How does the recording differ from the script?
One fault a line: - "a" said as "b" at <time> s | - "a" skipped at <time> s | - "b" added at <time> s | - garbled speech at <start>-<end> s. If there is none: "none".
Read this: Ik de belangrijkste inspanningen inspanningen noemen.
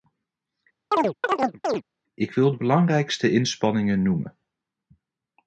- "wil" added at 2.3 s
- "inspanningen" skipped at 4.0 s